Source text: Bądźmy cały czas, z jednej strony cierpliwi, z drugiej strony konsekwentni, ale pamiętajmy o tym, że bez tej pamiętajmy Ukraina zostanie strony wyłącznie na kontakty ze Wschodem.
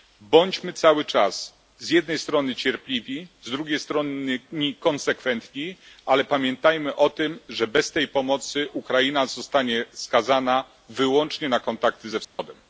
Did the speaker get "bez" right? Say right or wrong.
right